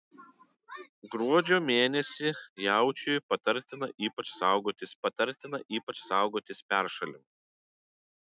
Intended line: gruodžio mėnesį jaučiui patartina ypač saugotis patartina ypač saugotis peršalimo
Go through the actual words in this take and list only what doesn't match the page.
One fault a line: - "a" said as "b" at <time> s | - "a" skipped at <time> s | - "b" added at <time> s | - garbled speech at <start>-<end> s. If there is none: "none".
none